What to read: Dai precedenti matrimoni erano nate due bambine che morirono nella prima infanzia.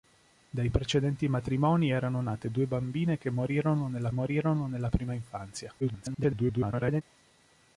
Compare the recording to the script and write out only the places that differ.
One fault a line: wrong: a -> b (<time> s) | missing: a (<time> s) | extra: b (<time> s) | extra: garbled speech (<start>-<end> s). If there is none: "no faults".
extra: morirono nella (4.1 s)
extra: garbled speech (5.8-7.0 s)